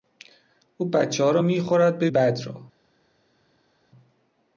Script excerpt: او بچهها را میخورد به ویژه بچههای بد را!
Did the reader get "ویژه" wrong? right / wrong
wrong